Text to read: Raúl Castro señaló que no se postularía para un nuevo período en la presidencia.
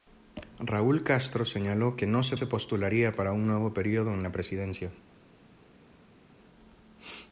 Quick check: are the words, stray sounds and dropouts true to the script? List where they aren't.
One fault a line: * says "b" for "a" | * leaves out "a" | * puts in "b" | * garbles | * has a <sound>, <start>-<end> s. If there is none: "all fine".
* puts in "se"